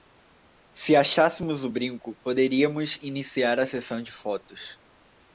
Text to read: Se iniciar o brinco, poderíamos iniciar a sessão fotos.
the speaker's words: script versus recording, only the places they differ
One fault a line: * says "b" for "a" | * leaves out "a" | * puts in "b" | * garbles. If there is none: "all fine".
* says "achássemos" for "iniciar"
* puts in "de"